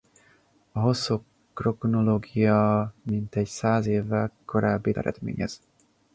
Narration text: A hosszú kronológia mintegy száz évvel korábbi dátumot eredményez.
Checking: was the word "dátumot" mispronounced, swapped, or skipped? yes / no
yes